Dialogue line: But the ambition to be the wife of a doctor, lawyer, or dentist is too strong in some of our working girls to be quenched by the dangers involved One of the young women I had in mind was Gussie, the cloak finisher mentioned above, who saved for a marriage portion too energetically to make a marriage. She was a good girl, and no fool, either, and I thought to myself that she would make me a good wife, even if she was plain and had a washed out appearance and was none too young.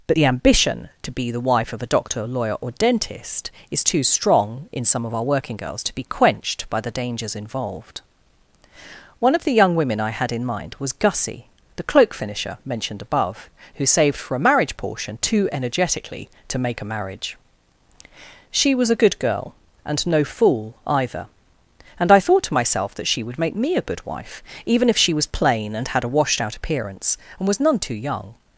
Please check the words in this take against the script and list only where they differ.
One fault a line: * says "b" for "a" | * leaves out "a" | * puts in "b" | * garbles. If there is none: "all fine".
all fine